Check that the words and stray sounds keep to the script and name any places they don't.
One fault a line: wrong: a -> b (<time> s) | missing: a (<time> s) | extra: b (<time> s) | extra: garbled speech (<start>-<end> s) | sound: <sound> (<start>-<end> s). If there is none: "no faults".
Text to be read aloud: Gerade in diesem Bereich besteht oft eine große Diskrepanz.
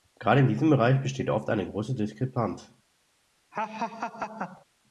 sound: laugh (3.5-4.7 s)